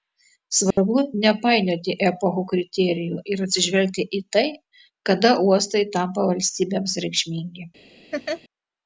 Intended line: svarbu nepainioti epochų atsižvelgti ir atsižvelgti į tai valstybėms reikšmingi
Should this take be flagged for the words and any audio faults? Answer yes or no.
yes